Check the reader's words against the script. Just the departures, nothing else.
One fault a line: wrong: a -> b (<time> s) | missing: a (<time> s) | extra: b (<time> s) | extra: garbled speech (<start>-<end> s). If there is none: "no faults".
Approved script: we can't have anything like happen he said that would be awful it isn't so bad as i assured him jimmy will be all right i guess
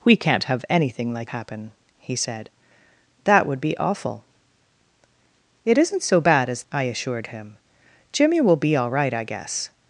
no faults